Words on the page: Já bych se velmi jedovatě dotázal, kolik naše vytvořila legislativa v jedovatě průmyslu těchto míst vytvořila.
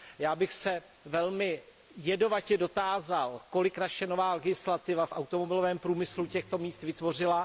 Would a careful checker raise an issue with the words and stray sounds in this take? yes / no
yes